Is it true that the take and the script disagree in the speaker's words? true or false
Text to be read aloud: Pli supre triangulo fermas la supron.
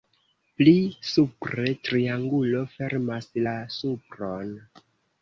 false